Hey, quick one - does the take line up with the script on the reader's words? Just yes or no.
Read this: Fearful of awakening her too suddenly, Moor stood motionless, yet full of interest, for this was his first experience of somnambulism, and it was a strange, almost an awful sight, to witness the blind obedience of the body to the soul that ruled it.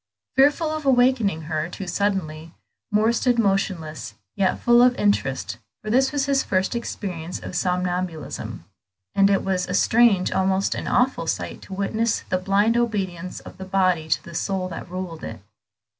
yes